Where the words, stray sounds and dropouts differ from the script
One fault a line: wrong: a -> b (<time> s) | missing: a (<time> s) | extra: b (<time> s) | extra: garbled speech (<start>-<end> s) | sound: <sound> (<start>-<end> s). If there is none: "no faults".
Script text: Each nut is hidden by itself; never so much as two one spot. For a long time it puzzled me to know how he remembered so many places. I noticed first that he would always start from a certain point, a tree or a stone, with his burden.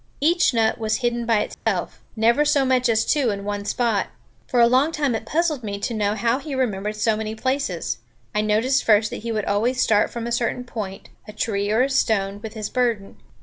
wrong: is -> was (0.8 s)
sound: dropout (1.5-1.7 s)
extra: in (3.3 s)